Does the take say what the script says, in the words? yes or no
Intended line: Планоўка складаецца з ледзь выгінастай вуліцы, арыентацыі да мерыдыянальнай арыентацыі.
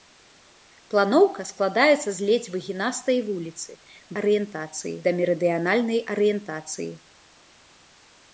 yes